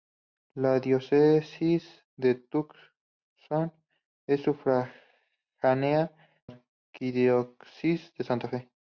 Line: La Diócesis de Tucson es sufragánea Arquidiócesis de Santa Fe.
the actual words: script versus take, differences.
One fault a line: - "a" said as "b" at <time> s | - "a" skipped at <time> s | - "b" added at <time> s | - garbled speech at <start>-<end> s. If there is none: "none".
none